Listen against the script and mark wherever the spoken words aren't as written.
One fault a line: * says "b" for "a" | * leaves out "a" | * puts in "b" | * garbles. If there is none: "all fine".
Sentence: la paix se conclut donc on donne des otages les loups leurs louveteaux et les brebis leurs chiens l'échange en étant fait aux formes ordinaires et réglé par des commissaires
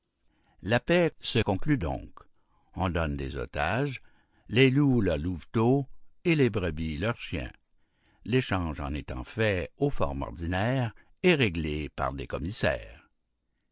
all fine